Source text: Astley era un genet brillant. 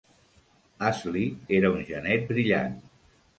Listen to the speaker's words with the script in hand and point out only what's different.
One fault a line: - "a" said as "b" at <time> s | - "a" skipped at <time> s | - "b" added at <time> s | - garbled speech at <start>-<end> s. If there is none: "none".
none